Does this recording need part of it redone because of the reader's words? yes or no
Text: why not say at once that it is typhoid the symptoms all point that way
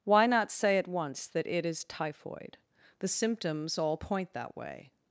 no